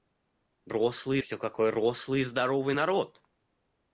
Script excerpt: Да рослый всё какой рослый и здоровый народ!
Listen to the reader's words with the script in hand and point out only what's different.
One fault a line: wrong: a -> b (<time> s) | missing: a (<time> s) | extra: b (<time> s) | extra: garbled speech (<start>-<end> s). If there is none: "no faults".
no faults